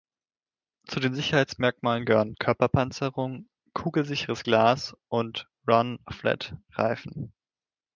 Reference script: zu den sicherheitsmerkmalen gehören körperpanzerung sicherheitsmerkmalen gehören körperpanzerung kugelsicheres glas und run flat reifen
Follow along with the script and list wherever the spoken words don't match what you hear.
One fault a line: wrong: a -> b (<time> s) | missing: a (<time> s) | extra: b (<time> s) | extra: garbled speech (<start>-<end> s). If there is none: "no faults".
missing: sicherheitsmerkmalen gehören körperpanzerung (3.5 s)